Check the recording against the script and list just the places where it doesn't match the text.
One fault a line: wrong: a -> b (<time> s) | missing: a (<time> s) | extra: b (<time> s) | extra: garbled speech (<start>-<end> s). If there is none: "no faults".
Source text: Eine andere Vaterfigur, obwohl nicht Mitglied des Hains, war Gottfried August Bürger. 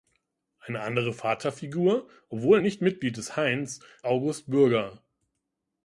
missing: war Gottfried (3.8 s)